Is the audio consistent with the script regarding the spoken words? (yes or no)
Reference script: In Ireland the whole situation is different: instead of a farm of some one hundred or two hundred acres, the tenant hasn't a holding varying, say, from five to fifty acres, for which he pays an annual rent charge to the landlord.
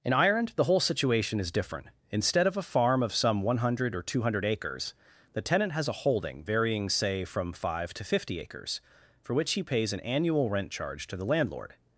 no